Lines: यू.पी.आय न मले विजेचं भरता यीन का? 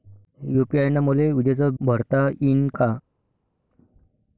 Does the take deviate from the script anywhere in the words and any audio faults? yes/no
no